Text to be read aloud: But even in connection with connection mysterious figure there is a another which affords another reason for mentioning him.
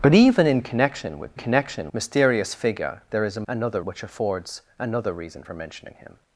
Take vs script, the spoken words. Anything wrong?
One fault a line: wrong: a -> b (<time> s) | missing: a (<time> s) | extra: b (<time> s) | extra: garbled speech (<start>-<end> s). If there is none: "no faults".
no faults